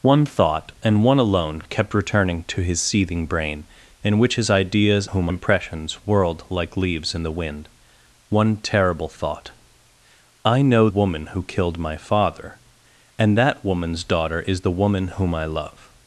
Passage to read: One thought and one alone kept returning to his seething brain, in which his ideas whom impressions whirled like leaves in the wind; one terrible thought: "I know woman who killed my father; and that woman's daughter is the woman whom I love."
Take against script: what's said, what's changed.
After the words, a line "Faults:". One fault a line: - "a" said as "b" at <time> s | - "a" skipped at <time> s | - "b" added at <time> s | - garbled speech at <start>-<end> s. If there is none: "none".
One thought and one alone kept returning to his seething brain, in which his ideas whom impressions whirled like leaves in the wind; one terrible thought: "I know woman who killed my father; and that woman's daughter is the woman whom I love."
Faults:
none